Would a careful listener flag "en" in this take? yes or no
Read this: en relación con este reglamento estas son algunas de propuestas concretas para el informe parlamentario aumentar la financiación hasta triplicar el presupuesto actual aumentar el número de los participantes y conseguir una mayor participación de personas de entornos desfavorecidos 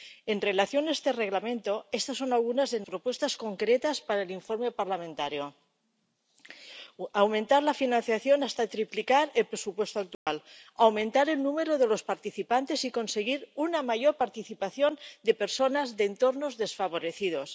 no